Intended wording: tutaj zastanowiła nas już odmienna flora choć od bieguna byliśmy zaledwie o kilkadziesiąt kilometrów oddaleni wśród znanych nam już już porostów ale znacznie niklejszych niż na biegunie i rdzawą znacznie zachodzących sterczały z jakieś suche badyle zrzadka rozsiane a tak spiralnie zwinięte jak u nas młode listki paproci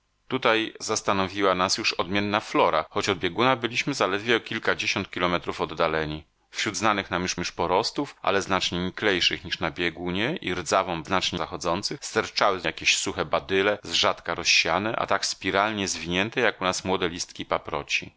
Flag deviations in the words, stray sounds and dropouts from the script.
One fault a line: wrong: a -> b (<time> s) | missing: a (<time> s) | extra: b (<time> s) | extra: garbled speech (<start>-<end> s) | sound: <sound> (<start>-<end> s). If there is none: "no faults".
no faults